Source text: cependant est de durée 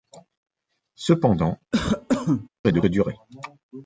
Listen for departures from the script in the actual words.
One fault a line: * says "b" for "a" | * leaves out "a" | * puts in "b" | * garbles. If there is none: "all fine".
all fine